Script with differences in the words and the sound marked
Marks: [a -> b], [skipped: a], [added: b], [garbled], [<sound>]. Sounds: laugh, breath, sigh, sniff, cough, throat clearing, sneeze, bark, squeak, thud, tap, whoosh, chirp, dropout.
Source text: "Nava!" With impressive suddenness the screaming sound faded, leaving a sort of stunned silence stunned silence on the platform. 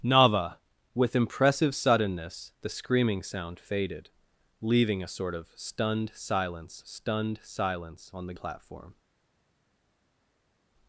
"Nava!" With impressive suddenness the screaming sound faded, leaving a sort of stunned silence stunned silence on the platform.